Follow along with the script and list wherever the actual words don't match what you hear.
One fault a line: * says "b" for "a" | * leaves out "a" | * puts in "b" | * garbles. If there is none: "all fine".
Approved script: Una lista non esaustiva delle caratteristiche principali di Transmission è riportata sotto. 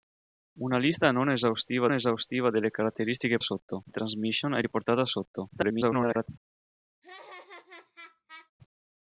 * puts in "esaustiva"
* says "sotto" for "principali"
* garbles